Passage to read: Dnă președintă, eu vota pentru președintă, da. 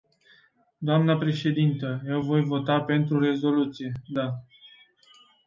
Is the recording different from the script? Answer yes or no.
yes